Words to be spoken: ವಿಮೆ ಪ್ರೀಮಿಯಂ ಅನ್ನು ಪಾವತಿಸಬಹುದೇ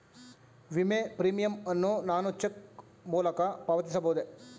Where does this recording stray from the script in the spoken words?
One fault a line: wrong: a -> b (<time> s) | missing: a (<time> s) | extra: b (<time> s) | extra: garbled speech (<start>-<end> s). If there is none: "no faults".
extra: ನಾನು ಚೆಕ್ ಮೂಲಕ (2.0 s)